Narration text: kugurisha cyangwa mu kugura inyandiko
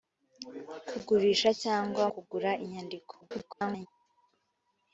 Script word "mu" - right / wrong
wrong